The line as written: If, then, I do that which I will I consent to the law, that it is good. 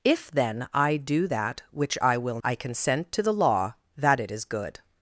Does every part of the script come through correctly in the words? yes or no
yes